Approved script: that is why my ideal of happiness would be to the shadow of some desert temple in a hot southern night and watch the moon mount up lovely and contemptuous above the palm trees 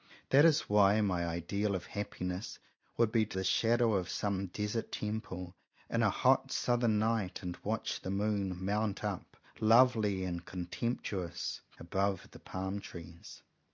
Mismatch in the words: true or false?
false